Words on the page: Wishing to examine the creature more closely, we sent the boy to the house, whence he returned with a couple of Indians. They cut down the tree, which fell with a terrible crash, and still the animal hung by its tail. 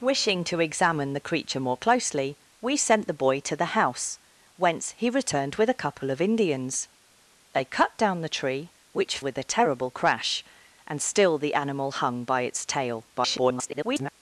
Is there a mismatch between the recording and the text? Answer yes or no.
yes